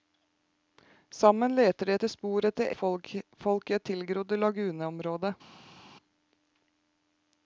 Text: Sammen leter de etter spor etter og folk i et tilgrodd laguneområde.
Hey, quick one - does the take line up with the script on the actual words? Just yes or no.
yes